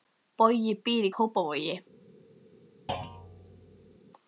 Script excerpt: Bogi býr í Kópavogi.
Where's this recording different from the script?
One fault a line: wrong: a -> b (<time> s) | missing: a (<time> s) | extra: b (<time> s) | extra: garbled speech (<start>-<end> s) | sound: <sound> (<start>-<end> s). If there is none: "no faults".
sound: thud (2.9-4.0 s)